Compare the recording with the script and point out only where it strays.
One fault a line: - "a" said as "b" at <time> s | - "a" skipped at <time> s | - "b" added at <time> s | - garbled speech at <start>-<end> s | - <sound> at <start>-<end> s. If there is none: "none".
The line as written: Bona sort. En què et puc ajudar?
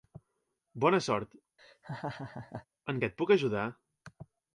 - laugh at 1.6-2.7 s